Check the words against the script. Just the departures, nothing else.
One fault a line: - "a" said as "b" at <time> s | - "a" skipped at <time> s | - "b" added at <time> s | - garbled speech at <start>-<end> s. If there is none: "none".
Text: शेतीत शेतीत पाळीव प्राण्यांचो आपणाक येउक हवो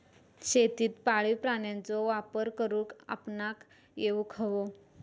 - "शेतीत" skipped at 0.9 s
- "वापर करुक" added at 2.0 s